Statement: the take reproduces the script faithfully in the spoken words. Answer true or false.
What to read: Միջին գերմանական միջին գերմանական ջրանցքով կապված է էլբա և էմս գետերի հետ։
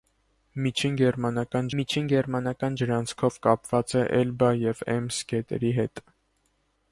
true